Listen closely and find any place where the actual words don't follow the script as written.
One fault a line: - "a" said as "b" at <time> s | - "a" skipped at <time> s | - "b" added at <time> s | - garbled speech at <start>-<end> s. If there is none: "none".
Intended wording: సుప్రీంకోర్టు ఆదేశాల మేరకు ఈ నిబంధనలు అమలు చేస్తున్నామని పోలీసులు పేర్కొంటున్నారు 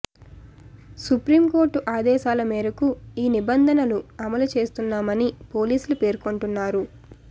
none